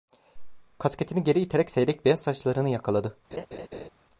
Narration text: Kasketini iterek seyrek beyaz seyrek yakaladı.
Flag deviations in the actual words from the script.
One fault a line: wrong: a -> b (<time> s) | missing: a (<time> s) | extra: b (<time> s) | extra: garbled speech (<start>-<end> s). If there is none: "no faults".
extra: geri (1.2 s)
wrong: seyrek -> saçlarını (2.2 s)